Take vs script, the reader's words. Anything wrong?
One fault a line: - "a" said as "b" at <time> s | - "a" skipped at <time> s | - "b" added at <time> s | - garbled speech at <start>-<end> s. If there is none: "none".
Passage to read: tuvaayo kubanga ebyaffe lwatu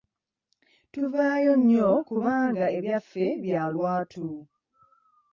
- "nnyo" added at 1.6 s
- "bya" added at 3.4 s